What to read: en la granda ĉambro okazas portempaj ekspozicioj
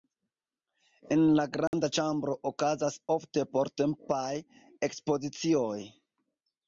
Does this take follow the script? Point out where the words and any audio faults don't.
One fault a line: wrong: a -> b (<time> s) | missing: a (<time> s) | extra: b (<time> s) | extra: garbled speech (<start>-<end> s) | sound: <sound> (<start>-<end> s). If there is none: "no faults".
sound: dropout (1.7-1.7 s)
extra: ofte (3.2 s)